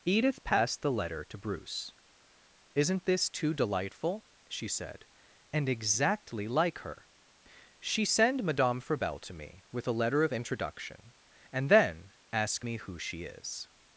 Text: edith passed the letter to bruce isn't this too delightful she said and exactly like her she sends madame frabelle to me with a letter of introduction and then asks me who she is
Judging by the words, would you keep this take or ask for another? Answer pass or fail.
fail